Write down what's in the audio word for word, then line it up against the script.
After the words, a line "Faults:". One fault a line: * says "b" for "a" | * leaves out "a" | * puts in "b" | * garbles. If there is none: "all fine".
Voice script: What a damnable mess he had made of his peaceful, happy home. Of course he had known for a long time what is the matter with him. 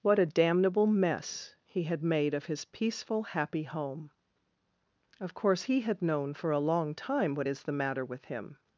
What a damnable mess he had made of his peaceful, happy home. Of course he had known for a long time what is the matter with him.
Faults:
all fine